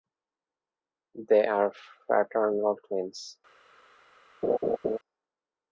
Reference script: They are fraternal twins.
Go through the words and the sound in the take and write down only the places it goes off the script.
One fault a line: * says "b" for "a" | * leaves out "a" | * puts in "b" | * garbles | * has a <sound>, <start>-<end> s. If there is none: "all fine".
* has a laugh, 4.4-5.0 s